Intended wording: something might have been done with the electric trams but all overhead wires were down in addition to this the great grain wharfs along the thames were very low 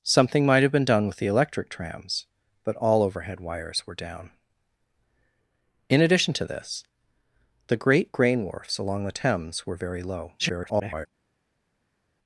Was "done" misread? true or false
false